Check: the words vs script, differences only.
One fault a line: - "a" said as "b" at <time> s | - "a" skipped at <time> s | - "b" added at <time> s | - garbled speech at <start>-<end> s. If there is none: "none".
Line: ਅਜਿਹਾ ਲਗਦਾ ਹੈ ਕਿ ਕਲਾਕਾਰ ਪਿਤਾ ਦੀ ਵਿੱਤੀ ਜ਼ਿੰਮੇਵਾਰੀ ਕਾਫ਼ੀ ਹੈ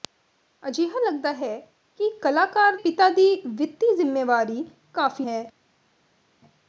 none